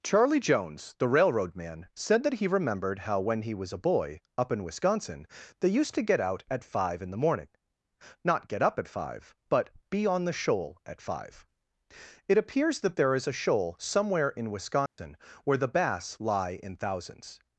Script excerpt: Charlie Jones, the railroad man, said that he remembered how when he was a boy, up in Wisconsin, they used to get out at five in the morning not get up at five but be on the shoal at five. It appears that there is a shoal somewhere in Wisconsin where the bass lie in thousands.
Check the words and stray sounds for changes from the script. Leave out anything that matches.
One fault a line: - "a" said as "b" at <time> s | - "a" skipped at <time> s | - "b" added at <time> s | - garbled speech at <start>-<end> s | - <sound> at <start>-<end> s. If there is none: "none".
- dropout at 14.9-15.0 s